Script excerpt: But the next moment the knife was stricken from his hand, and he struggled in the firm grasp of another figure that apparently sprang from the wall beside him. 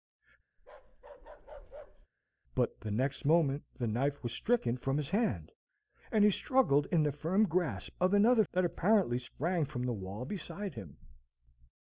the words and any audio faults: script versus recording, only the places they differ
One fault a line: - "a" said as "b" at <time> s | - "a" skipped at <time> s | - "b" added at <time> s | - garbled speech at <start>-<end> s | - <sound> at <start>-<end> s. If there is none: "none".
- bark at 0.6-2.1 s
- "figure" skipped at 8.4 s